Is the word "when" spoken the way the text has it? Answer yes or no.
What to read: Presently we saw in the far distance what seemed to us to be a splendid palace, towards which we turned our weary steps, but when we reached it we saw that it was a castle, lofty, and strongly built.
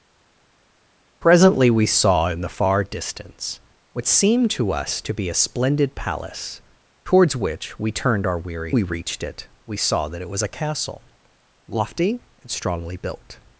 no